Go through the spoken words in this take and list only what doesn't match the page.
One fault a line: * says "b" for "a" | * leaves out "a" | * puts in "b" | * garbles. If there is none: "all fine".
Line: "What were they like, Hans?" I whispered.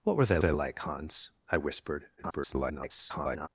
* puts in "they"
* garbles